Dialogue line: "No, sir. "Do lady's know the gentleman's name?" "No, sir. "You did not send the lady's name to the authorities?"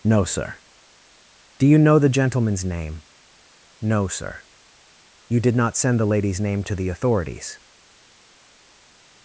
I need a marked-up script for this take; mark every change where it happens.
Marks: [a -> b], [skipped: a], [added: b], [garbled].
"No, sir. "Do [lady's -> you] know the gentleman's name?" "No, sir. "You did not send the lady's name to the authorities?"